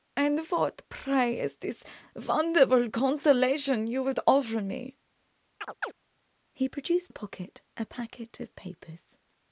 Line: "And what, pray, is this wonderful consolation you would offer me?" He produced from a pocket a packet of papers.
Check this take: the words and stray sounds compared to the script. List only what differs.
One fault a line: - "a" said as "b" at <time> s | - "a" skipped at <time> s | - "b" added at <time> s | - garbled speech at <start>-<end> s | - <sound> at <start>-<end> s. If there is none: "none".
- chirp at 5.6-5.9 s
- "from" skipped at 7.1 s